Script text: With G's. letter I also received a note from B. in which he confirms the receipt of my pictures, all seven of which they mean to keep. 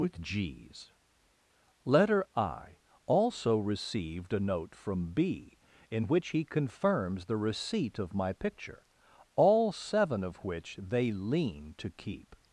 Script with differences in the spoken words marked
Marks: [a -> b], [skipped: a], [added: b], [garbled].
With G's. letter I also received a note from B. in which he confirms the receipt of my [pictures, -> picture] all seven of which they [mean -> lean] to keep.